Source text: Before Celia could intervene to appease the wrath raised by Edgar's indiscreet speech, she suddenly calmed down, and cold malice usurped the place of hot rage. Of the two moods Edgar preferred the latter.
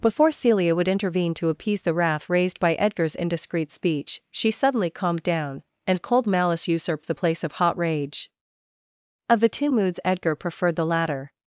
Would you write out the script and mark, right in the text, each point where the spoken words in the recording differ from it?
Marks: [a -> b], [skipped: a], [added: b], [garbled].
Before Celia [could -> would] intervene to appease the wrath raised by Edgar's indiscreet speech, she suddenly calmed down, and cold malice usurped the place of hot rage. Of the two moods Edgar preferred the latter.